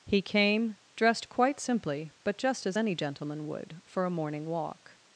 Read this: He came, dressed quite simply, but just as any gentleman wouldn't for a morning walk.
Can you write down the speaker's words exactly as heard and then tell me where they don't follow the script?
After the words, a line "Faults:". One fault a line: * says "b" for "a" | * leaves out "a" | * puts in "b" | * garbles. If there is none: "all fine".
He came, dressed quite simply, but just as any gentleman would for a morning walk.
Faults:
* says "would" for "wouldn't"